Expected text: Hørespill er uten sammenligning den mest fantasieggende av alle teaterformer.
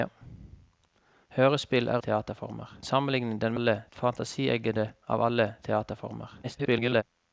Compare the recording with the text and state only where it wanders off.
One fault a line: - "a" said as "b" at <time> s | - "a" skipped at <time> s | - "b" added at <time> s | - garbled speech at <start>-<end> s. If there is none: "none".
- "uten" said as "teaterformer" at 2.1 s
- "mest" said as "alle" at 3.5 s
- garbled speech at 6.4-7.0 s